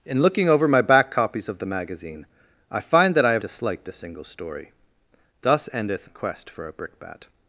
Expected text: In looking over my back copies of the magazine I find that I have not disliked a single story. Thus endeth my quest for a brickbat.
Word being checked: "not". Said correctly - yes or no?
no